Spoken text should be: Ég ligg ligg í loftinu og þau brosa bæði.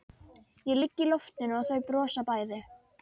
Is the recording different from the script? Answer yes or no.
yes